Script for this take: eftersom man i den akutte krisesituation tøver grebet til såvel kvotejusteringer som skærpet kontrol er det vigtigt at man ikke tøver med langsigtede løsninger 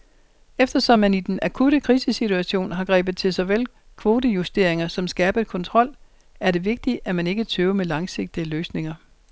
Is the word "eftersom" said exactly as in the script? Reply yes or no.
yes